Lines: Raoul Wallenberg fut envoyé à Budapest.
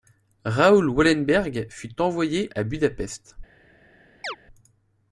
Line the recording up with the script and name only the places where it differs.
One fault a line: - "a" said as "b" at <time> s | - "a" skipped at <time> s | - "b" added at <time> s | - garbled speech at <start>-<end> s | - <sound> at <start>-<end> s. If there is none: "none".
- chirp at 4.2-4.4 s